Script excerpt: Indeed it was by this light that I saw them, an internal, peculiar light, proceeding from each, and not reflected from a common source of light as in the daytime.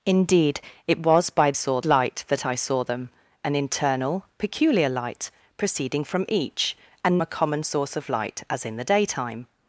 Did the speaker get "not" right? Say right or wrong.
wrong